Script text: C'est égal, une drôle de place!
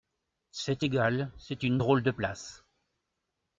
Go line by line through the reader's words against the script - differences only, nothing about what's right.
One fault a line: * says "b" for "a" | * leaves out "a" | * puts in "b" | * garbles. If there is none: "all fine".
* puts in "c'est"